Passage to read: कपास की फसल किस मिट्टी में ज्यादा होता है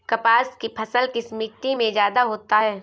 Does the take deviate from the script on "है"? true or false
false